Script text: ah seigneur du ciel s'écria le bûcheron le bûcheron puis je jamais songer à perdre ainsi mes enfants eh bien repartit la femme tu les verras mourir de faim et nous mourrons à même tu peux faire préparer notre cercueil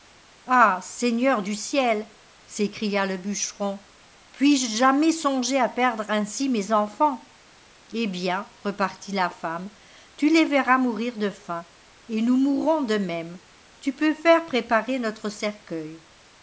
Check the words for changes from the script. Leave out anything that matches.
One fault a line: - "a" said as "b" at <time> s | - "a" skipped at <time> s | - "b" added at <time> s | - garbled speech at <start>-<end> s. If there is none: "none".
- "le bûcheron" skipped at 3.8 s
- "à" said as "de" at 12.8 s